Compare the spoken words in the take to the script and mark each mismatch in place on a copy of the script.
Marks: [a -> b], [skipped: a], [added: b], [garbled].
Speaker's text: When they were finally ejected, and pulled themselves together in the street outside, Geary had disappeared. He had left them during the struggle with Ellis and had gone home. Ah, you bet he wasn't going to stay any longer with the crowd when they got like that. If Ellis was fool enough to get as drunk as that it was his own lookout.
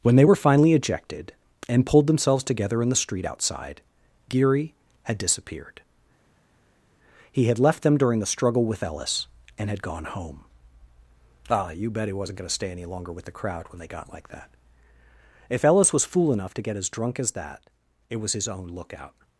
When they were finally ejected, and pulled themselves together in the street outside, Geary had disappeared. He had left them during the struggle with Ellis and had gone home. Ah, you bet he wasn't going to stay any longer with the crowd when they got like that. If Ellis was fool enough to get as drunk as that it was his own lookout.